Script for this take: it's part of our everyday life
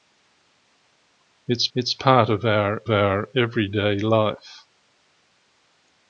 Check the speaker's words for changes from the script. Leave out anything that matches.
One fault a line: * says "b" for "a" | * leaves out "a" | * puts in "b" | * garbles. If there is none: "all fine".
* puts in "it's"
* puts in "our"